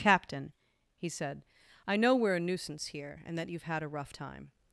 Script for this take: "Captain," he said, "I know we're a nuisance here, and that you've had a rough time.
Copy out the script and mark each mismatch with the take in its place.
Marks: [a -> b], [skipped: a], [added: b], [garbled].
"Captain," he said, "I know we're a nuisance here, and that you've had a rough time.